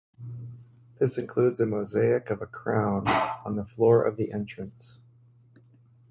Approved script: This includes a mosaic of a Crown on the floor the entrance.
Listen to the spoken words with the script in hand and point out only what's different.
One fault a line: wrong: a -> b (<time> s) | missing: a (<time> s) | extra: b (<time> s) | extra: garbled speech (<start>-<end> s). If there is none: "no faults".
extra: of (4.0 s)